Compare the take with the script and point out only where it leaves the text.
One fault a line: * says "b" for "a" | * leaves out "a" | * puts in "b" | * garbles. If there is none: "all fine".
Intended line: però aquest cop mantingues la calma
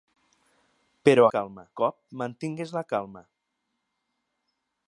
* says "calma" for "aquest"